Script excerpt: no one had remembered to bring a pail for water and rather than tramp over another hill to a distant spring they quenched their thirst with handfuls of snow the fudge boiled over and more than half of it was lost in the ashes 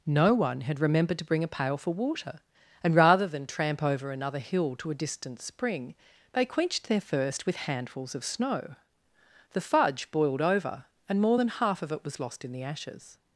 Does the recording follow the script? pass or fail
pass